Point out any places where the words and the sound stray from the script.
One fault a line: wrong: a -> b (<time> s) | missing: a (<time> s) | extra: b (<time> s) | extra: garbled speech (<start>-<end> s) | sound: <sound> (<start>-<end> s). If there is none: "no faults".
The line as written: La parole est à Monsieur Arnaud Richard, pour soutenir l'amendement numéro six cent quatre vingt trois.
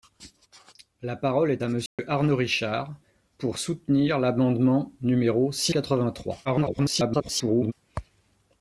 sound: dropout (1.9-2.0 s)
missing: cent (5.7 s)
extra: garbled speech (6.4-7.7 s)